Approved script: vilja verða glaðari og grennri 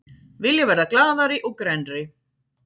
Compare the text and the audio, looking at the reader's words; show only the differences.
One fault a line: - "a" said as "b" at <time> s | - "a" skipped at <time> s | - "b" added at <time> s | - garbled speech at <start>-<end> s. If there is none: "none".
none